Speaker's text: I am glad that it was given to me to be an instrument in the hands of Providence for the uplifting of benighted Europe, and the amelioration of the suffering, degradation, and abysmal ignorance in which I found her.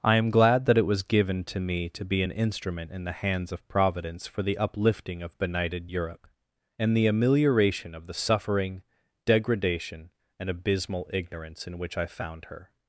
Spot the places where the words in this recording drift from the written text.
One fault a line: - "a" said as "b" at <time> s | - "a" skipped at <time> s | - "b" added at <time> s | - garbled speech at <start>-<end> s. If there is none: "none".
none